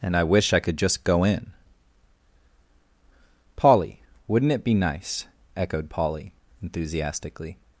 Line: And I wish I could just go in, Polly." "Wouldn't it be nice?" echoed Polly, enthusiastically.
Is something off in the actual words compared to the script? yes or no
no